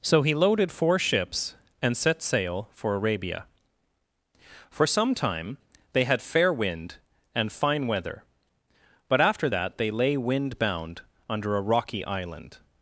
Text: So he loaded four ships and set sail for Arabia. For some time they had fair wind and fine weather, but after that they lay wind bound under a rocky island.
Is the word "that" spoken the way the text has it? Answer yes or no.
yes